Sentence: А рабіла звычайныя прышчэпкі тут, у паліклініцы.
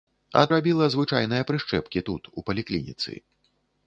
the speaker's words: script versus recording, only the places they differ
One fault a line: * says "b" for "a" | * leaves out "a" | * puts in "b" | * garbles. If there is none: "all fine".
all fine